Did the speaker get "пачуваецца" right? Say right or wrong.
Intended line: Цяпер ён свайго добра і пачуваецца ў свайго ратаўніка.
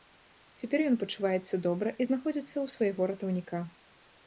wrong